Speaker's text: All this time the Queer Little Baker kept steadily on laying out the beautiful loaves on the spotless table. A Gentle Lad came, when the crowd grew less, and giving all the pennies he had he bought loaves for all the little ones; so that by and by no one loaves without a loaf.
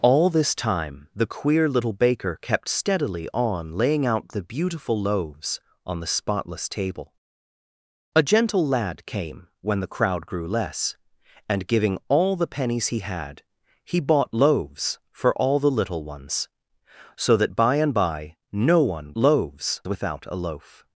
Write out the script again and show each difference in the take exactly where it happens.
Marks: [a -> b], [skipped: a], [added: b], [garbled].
All this time the Queer Little Baker kept steadily on laying out the beautiful loaves on the spotless table. A Gentle Lad came, when the crowd grew less, and giving all the pennies he had he bought loaves for all the little ones; so that by and by no one loaves without a loaf.